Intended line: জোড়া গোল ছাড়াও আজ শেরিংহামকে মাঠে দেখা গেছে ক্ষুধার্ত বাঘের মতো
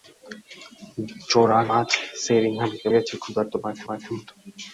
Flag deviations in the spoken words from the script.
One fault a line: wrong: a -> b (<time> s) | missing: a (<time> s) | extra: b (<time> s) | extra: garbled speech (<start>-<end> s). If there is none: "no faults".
missing: গোল ছাড়াও (1.6 s)
missing: মাঠে দেখা (2.9 s)
extra: বাঘের (3.9 s)